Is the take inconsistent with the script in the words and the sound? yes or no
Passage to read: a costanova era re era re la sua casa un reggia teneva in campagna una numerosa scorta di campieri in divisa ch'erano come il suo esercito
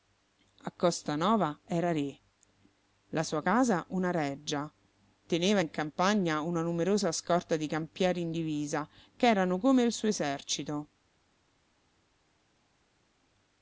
yes